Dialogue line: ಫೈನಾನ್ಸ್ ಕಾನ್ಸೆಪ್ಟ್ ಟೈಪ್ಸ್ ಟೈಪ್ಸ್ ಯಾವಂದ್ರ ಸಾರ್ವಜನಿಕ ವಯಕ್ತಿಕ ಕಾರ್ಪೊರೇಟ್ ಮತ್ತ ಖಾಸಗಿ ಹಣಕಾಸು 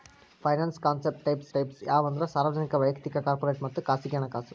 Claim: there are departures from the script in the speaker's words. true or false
false